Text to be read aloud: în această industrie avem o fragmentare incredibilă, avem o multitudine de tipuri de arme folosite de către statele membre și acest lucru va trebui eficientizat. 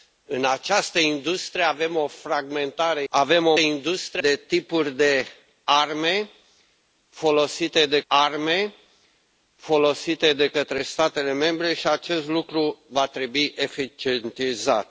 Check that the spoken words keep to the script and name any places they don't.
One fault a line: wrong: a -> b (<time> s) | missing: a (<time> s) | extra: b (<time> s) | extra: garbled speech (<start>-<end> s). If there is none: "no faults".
missing: incredibilă (3.0 s)
wrong: multitudine -> industrie (3.6 s)
extra: arme folosite de (8.1 s)